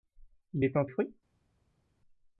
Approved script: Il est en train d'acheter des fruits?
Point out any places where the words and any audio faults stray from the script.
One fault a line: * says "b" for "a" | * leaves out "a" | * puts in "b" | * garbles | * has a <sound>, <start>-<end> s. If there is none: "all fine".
* leaves out "train d'acheter des"